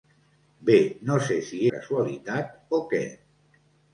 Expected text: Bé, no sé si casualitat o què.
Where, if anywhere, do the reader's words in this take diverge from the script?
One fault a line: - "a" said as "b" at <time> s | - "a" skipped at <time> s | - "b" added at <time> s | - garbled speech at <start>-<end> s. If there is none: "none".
none